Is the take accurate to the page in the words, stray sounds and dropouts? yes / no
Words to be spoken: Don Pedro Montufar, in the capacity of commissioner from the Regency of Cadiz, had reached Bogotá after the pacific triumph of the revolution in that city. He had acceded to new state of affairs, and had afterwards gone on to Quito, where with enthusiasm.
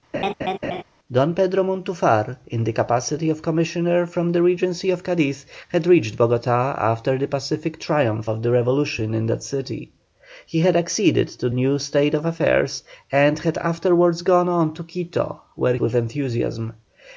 no